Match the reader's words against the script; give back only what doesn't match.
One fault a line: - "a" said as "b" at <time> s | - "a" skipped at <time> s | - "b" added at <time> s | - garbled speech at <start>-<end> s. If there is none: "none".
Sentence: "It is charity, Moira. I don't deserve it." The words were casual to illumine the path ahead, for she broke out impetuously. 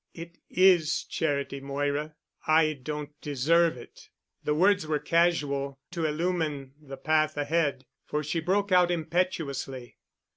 none